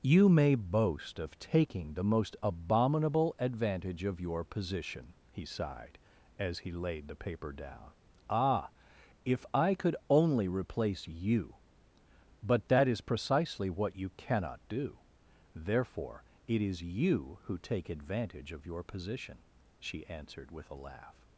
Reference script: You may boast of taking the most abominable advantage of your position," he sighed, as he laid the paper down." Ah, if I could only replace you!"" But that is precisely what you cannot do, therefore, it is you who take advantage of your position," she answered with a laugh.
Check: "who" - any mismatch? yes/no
no